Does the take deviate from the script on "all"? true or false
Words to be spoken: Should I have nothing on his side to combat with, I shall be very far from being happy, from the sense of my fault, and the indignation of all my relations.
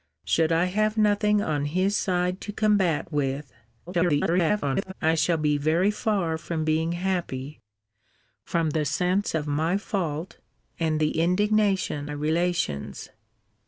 true